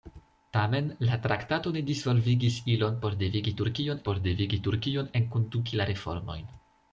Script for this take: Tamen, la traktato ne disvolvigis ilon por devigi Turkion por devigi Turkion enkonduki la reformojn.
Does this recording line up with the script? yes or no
yes